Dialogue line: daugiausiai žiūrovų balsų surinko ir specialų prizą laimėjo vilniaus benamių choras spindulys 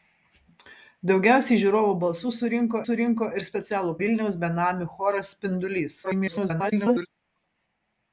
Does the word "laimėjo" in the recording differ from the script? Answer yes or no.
yes